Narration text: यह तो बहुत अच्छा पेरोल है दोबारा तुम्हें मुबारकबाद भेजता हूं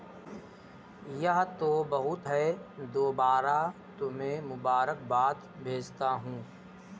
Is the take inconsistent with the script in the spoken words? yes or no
yes